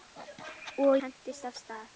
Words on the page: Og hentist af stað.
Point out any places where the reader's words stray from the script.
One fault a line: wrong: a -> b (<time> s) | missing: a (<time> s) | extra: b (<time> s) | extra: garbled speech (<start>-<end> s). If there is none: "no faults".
no faults